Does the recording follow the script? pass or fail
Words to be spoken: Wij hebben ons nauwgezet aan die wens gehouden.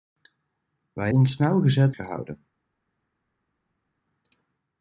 fail